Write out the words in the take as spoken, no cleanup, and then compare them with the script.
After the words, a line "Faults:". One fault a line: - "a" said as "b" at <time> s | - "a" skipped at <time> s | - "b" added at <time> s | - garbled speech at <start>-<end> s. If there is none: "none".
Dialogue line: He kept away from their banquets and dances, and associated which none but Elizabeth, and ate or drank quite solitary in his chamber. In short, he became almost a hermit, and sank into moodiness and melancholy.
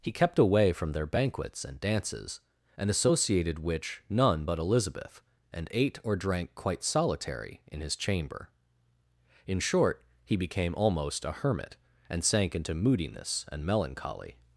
He kept away from their banquets and dances, and associated which none but Elizabeth, and ate or drank quite solitary in his chamber. In short, he became almost a hermit, and sank into moodiness and melancholy.
Faults:
none